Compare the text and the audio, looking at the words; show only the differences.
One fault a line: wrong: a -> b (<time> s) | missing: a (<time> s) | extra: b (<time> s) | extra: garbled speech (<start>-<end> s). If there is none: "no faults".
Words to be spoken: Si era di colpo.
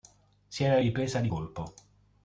extra: ripresa (0.8 s)